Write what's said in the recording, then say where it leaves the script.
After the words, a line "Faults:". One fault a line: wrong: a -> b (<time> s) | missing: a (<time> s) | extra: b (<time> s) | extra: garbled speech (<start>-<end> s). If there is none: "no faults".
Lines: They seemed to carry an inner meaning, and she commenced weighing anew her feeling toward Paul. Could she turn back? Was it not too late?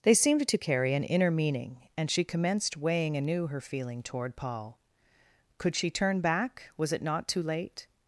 They seemed to carry an inner meaning, and she commenced weighing anew her feeling toward Paul. Could she turn back? Was it not too late?
Faults:
no faults